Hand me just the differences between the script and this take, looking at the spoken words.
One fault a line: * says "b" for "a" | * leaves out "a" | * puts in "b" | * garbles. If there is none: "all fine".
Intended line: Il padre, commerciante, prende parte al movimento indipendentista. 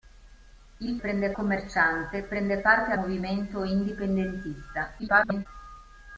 * says "prende" for "padre"
* leaves out "al"
* garbles